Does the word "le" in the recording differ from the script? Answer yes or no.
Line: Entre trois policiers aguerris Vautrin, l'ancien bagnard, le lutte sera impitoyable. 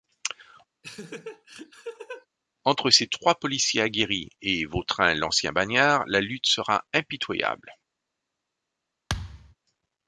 yes